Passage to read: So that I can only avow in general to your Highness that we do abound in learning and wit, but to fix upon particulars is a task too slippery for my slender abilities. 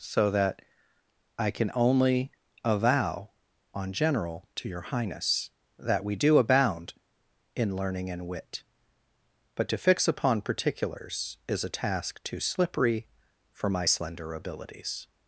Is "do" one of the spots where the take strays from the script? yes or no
no